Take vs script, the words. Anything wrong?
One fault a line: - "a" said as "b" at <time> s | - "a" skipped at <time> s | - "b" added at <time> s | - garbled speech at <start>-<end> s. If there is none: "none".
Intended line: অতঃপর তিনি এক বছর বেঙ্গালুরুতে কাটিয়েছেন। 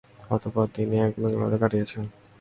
- "বছর" skipped at 1.1 s